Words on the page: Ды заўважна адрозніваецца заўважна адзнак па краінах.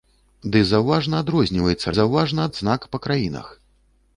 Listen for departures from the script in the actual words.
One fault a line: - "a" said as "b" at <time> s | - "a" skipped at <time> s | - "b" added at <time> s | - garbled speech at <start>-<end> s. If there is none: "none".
none